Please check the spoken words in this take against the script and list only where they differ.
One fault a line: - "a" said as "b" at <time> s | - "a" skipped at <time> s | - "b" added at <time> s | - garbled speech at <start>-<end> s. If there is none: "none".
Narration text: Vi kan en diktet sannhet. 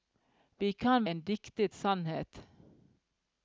none